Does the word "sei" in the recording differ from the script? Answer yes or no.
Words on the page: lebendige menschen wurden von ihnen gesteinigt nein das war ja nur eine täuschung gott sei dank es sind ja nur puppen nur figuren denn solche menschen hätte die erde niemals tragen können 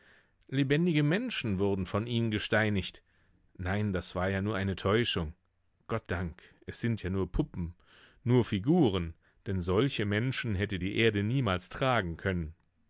yes